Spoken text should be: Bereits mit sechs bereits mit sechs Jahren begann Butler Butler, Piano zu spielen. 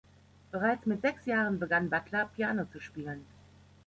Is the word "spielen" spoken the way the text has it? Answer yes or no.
yes